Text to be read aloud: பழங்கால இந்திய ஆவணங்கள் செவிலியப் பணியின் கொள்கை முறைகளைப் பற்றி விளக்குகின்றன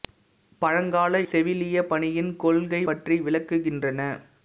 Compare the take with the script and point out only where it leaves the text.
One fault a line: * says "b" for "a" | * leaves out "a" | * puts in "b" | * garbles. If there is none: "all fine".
* leaves out "இந்திய ஆவணங்கள்"
* leaves out "முறைகளைப்"